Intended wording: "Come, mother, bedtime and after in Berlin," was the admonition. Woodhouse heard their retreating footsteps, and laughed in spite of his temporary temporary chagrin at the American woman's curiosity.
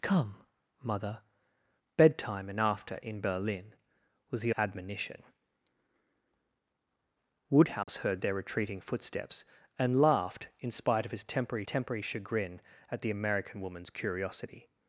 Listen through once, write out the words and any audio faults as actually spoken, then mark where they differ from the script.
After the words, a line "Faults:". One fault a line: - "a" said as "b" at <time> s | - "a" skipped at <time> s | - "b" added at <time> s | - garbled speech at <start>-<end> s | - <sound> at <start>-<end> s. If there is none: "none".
"Come, mother, bedtime and after in Berlin," was the admonition. Woodhouse heard their retreating footsteps, and laughed in spite of his temporary temporary chagrin at the American woman's curiosity.
Faults:
- dropout at 7.8-7.9 s